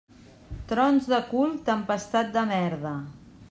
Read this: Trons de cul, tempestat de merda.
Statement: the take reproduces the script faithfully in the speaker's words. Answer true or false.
true